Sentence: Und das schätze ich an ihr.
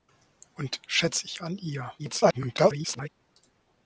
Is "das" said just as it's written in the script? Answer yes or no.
no